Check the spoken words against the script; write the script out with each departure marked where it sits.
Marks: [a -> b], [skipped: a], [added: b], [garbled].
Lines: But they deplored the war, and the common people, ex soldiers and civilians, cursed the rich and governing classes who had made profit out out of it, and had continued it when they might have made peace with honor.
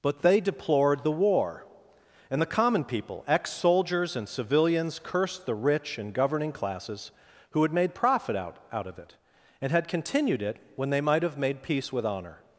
But they deplored the war, and the common people, ex soldiers and civilians, cursed the rich and governing classes who had made profit out out of it, and had continued it when they might have made peace with honor.